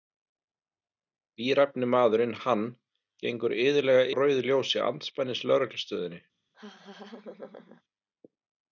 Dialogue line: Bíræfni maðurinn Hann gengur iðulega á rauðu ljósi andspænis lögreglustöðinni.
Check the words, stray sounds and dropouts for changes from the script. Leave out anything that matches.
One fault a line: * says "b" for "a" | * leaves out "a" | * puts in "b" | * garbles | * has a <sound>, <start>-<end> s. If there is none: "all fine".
* has a laugh, 6.5-7.8 s